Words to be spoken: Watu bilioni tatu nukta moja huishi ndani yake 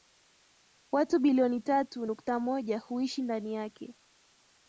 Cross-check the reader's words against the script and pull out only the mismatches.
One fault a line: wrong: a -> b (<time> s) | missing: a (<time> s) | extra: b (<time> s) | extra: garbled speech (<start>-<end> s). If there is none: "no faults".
no faults